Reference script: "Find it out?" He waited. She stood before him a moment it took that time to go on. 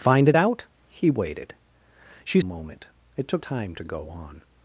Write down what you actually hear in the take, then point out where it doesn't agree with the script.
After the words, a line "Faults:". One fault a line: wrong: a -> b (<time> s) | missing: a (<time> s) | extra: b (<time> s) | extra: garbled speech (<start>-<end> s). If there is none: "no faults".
"Find it out?" He waited. She a moment it took time to go on.
Faults:
missing: stood before him (2.4 s)
missing: that (3.4 s)